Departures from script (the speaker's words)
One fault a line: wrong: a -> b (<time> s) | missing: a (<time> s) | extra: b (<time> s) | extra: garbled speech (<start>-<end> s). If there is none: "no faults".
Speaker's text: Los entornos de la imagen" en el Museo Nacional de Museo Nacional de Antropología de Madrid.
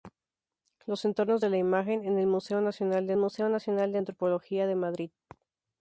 no faults